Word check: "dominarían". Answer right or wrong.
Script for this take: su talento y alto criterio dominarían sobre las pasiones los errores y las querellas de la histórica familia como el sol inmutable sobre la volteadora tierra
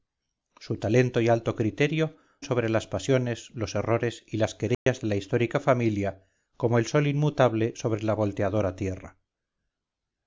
wrong